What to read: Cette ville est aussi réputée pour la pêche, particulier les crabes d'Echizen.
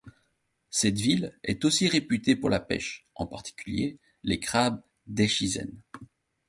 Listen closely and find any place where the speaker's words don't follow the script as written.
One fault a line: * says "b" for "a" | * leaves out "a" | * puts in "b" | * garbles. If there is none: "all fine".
* puts in "en"